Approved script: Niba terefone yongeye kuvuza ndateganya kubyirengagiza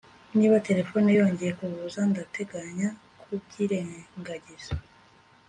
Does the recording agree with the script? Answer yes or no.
yes